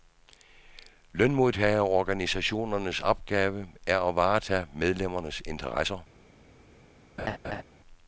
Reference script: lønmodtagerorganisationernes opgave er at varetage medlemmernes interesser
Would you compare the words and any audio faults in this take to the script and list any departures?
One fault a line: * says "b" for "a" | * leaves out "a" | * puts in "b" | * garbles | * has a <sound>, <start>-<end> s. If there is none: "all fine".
* has a laugh, 7.2-7.6 s